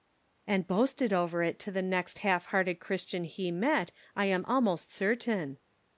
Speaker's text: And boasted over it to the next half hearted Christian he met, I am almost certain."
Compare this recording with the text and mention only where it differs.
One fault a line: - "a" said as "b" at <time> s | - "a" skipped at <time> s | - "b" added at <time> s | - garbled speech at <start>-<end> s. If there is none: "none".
none